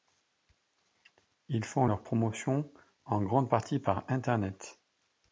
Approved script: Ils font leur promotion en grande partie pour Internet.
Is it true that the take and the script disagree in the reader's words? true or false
true